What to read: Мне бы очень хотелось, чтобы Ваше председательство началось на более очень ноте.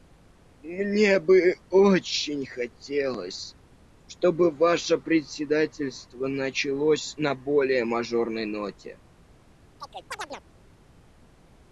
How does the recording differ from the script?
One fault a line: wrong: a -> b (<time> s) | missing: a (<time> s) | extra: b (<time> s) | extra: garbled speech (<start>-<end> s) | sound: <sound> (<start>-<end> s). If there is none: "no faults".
wrong: очень -> мажорной (7.8 s)
sound: chirp (9.8-10.4 s)